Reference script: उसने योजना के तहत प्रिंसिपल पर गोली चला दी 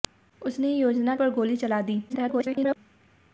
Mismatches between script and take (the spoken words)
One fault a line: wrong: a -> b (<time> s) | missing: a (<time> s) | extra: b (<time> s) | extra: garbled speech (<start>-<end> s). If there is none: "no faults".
missing: के तहत प्रिंसिपल (1.1 s)
extra: garbled speech (2.1-2.8 s)